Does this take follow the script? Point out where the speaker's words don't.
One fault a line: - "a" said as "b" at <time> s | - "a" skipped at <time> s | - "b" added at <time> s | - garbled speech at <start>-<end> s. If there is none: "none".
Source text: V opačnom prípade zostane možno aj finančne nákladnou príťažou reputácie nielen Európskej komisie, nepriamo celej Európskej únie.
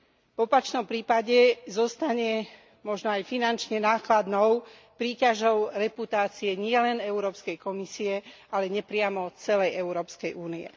- "ale" added at 8.5 s